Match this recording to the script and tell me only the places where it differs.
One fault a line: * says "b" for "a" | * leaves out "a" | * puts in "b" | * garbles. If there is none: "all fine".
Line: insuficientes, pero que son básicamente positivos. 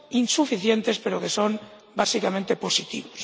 all fine